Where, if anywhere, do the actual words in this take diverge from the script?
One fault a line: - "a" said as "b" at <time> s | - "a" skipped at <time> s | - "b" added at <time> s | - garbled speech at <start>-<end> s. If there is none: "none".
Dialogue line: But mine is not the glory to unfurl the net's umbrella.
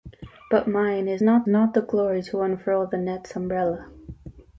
- "not" added at 1.4 s